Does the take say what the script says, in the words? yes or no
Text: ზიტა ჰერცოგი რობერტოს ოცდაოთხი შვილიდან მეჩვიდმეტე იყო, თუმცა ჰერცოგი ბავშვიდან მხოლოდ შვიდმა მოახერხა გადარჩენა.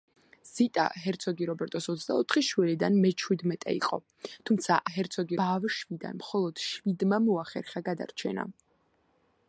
yes